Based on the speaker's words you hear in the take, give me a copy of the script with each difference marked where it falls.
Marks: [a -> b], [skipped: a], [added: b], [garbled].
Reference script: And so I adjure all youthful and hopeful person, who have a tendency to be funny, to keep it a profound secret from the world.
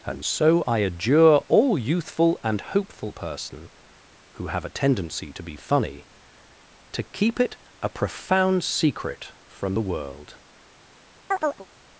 And so I adjure all youthful and hopeful person, who have a tendency to be funny, to keep it a profound secret from the world.